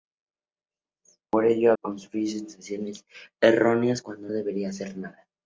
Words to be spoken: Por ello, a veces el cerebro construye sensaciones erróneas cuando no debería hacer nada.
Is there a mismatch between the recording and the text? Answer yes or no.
yes